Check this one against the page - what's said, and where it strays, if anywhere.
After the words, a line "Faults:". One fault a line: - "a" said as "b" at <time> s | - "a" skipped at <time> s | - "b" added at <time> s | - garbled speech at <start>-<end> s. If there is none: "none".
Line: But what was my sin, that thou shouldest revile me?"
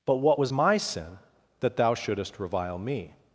But what was my sin, that thou shouldest revile me?"
Faults:
none